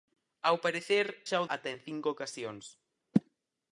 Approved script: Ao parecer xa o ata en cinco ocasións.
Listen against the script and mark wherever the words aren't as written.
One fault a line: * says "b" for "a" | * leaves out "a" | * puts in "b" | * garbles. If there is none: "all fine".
all fine